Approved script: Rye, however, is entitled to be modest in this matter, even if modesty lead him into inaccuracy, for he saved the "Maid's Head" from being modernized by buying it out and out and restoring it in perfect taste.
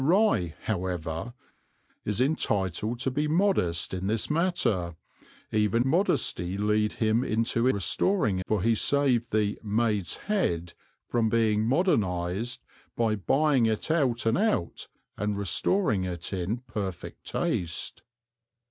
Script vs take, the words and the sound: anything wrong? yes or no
yes